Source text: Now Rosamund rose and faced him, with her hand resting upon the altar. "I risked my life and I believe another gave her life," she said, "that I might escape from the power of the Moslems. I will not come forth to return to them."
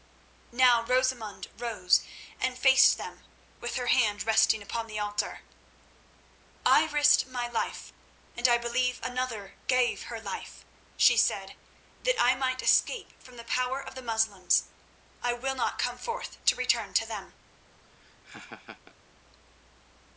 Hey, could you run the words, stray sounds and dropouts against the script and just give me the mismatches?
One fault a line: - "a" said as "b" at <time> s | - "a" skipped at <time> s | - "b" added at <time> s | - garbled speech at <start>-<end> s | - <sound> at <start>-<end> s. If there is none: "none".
- "him" said as "them" at 3.0 s
- laugh at 17.8-19.0 s